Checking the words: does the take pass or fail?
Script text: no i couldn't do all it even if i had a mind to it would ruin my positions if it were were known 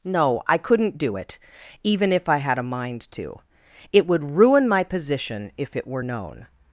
fail